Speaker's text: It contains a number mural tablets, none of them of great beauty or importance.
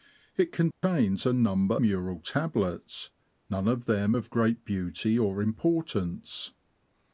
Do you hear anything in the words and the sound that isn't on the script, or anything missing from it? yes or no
yes